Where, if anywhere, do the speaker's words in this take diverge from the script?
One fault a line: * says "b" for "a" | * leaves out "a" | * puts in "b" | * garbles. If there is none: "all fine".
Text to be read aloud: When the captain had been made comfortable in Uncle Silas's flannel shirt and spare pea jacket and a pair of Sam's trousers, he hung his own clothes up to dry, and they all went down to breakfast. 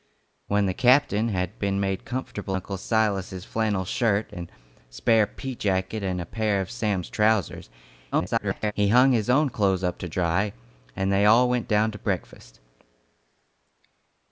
* leaves out "in"
* garbles